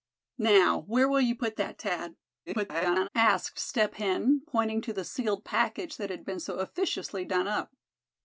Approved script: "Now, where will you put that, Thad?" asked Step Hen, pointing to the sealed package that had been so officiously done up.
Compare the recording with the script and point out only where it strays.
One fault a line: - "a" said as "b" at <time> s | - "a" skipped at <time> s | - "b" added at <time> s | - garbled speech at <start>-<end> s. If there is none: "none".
- garbled speech at 2.5-3.1 s